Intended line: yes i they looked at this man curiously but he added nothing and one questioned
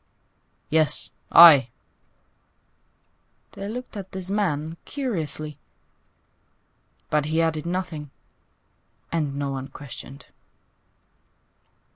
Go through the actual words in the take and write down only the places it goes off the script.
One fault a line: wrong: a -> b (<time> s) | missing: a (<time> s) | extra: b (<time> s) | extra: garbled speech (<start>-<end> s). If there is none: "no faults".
extra: no (9.3 s)